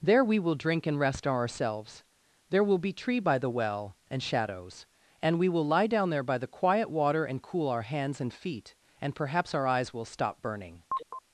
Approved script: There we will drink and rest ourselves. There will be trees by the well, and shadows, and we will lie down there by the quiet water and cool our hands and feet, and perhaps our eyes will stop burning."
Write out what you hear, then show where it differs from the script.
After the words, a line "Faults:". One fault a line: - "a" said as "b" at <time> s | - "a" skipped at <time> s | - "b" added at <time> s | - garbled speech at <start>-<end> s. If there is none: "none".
There we will drink and rest ourselves. There will be tree by the well, and shadows, and we will lie down there by the quiet water and cool our hands and feet, and perhaps our eyes will stop burning."
Faults:
- "trees" said as "tree" at 2.9 s